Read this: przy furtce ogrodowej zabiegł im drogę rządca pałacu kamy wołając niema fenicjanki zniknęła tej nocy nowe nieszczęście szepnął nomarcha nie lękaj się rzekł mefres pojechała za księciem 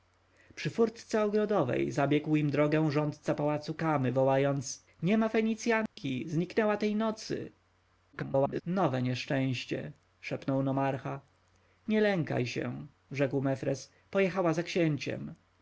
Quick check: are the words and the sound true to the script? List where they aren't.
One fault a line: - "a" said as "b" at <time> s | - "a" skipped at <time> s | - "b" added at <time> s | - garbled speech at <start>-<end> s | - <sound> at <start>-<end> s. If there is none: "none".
- dropout at 5.9-6.0 s
- garbled speech at 8.1-8.6 s